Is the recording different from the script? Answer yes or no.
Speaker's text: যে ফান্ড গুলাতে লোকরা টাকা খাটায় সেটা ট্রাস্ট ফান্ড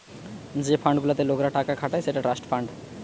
no